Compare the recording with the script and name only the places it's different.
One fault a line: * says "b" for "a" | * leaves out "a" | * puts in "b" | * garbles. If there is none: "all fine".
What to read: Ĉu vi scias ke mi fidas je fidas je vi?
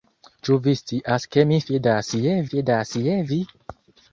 all fine